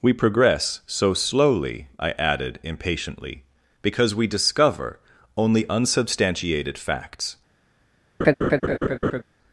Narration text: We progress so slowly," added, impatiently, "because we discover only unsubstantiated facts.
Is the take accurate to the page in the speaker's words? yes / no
no